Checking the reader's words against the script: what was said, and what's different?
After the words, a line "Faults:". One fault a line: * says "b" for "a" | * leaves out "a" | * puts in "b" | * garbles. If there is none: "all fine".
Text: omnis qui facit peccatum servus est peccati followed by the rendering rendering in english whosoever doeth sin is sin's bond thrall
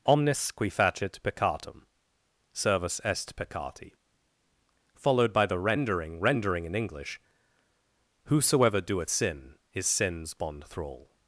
omnis qui facit peccatum servus est peccati followed by the rendering rendering in english whosoever doeth sin is sin's bond thrall
Faults:
all fine